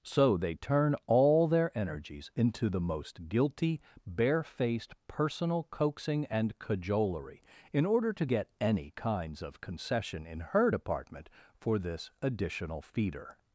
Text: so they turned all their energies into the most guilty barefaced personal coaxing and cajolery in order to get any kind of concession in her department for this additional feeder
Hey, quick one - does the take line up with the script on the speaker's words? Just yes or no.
no